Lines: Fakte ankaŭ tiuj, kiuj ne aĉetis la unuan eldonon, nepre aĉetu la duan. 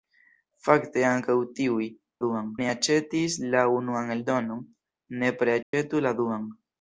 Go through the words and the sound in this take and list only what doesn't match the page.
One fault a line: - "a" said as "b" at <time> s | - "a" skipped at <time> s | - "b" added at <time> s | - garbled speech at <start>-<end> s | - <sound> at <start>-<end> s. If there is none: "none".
- "kiuj" said as "duan" at 2.2 s
- dropout at 5.6-5.7 s